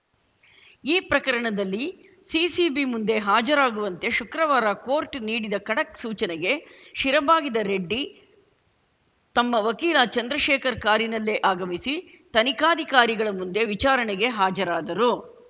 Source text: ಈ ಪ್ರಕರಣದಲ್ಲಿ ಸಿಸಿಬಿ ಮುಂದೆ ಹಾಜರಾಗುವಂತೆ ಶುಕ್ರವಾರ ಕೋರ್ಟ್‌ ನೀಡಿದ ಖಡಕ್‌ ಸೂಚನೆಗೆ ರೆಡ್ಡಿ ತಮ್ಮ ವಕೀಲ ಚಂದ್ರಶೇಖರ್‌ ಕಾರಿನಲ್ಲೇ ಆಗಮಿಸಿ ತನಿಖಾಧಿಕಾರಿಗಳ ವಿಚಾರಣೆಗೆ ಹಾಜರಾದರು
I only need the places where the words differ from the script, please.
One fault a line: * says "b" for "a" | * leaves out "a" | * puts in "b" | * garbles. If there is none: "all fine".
* puts in "ಶಿರಬಾಗಿದ"
* puts in "ಮುಂದೆ"